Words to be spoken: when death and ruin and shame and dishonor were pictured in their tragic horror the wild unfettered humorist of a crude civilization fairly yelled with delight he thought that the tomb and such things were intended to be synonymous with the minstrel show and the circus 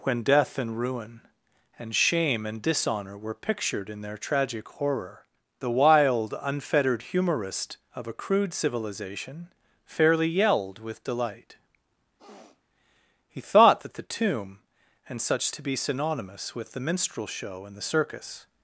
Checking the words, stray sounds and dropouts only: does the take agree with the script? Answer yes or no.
no